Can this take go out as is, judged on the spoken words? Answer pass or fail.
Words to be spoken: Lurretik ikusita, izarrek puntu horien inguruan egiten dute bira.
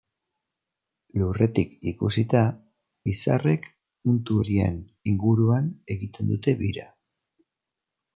pass